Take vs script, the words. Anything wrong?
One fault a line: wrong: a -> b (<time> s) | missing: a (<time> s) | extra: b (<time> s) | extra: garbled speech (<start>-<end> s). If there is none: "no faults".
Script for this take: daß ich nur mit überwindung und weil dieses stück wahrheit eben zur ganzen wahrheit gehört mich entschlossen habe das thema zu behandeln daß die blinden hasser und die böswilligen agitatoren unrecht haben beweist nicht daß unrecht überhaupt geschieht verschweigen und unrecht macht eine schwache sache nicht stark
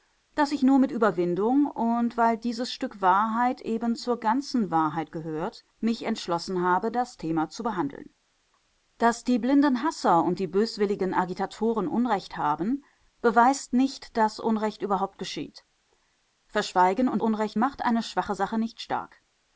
no faults